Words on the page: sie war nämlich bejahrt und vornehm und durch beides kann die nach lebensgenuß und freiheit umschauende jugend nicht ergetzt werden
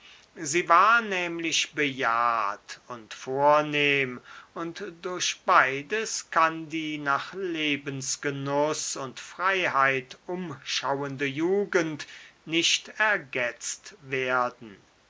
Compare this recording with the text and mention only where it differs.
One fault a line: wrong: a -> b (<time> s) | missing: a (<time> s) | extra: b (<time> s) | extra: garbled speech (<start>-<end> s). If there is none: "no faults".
no faults